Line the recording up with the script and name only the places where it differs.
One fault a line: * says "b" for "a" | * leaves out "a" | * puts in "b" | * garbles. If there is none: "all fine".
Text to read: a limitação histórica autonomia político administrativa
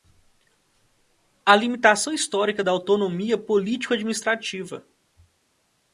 * puts in "da"